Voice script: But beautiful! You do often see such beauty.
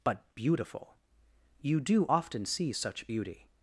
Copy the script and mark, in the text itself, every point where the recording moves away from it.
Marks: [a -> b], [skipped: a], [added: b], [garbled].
But beautiful! You do often see such beauty.